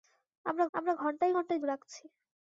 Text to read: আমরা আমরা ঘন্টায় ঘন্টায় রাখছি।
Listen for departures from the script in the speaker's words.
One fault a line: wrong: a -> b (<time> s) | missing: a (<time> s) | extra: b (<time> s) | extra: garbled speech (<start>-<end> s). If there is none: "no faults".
no faults